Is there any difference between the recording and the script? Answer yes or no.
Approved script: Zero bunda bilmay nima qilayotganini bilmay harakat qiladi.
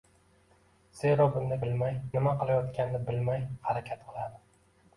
no